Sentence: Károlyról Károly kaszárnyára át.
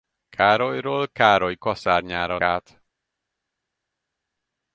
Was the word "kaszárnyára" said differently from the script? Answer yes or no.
no